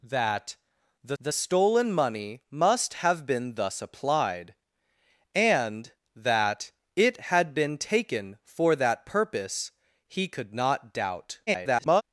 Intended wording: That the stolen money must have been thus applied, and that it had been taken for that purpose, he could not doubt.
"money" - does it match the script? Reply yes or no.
yes